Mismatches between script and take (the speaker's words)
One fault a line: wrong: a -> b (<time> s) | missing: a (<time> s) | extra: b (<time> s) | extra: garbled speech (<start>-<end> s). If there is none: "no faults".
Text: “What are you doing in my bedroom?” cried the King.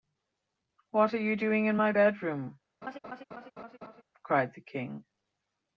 no faults